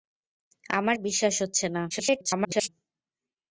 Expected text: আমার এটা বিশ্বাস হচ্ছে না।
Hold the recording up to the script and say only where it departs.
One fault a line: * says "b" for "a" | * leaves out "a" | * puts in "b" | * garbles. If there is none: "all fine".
* leaves out "এটা"
* garbles